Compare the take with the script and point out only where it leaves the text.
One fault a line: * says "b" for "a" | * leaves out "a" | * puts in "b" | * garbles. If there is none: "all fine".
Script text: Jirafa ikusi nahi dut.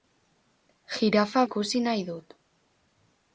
all fine